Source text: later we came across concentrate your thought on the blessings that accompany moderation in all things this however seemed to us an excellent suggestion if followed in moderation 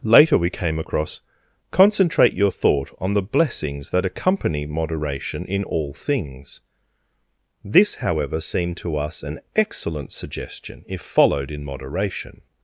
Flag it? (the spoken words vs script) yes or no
no